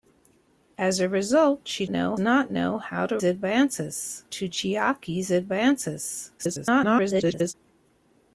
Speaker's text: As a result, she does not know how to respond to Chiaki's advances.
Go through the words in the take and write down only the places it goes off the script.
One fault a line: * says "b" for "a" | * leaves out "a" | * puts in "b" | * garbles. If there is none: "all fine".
* says "know" for "does"
* says "advances" for "respond"
* garbles